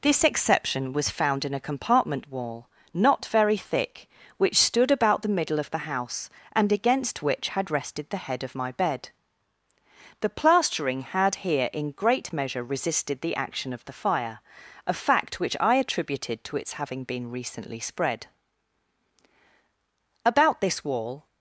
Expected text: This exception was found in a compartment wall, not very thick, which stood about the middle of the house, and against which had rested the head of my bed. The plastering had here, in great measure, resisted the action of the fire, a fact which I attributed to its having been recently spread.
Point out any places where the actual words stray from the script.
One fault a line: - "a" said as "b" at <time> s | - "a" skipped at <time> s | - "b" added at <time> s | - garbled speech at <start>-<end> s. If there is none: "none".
- "About this wall" added at 20.2 s